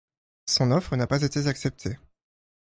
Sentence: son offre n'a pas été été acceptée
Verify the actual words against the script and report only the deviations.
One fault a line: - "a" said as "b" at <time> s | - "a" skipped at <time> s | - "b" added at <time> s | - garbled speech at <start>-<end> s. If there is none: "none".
- "été" skipped at 1.5 s